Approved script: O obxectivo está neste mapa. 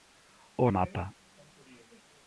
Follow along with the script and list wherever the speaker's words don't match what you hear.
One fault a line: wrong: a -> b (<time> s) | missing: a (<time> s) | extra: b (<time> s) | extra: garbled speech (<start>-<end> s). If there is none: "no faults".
missing: obxectivo está neste (0.6 s)